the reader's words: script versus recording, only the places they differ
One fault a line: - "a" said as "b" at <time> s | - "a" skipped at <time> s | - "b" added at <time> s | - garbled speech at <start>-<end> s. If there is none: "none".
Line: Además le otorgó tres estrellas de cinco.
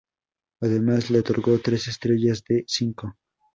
none